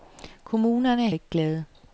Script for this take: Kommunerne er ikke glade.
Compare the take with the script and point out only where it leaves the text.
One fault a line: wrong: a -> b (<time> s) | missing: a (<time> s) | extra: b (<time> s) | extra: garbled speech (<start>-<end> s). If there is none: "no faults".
no faults